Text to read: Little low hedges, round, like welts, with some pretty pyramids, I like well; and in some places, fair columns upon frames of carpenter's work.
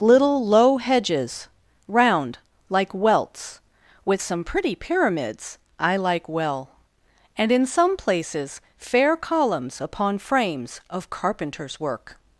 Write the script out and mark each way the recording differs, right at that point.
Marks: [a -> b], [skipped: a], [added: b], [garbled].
Little low hedges, round, like welts, with some pretty pyramids, I like well; and in some places, fair columns upon frames of carpenter's work.